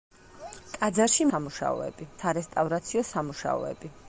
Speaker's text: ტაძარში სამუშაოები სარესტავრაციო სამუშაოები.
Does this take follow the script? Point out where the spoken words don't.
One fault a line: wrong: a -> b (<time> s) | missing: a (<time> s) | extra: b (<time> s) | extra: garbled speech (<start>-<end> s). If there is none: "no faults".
no faults